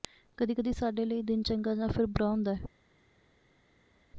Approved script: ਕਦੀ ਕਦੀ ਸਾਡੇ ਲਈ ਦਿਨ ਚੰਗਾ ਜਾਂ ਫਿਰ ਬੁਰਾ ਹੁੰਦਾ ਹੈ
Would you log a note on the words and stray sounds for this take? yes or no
no